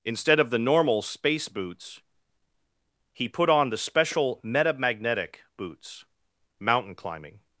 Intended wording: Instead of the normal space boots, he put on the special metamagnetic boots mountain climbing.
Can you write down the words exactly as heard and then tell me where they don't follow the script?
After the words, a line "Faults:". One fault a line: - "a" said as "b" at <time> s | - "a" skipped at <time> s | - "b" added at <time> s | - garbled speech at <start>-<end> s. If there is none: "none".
Instead of the normal space boots, he put on the special metamagnetic boots mountain climbing.
Faults:
none